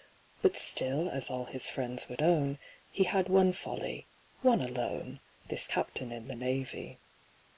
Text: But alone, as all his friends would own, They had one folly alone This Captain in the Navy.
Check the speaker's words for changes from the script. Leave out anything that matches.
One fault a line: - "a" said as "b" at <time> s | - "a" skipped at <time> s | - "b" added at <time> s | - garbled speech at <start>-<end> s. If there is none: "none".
- "alone" said as "still" at 0.6 s
- "They" said as "He" at 2.9 s
- "one" added at 4.4 s